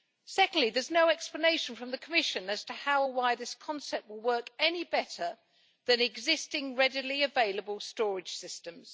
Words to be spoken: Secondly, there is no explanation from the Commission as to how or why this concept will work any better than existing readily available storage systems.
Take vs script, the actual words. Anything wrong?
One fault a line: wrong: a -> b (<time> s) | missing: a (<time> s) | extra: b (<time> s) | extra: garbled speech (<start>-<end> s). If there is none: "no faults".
no faults